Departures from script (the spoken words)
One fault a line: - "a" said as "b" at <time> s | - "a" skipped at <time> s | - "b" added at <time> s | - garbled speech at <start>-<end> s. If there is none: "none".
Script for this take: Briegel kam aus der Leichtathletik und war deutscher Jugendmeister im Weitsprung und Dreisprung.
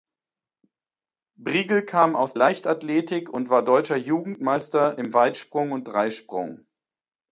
- "der" skipped at 2.3 s